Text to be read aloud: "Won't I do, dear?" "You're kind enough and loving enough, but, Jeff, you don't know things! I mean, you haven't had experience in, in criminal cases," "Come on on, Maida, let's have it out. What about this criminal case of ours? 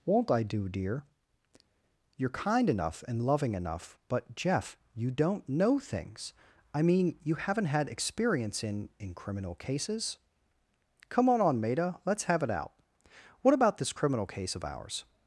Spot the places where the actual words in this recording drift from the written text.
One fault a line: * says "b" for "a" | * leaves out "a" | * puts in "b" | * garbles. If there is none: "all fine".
all fine